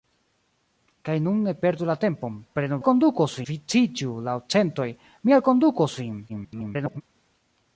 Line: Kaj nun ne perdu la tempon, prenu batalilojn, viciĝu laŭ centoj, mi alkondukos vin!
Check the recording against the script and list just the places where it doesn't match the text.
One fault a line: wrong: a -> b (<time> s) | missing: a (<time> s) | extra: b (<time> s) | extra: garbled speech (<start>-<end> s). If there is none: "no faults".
wrong: batalilojn -> alkondukos (2.8 s)
extra: garbled speech (6.3-7.0 s)